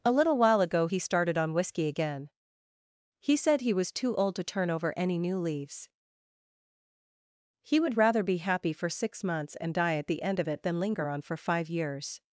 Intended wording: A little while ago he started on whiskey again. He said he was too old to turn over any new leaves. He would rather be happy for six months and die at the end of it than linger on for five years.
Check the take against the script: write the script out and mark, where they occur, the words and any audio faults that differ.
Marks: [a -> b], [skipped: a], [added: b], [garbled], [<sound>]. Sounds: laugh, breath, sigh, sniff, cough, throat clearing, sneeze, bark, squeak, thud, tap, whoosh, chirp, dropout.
A little while ago he started on whiskey again. He said he was too old to turn over any new leaves. He would rather be happy for six months and die at the end of it than linger on for five years.